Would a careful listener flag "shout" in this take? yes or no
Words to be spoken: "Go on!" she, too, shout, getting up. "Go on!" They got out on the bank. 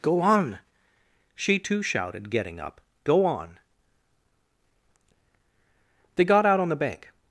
yes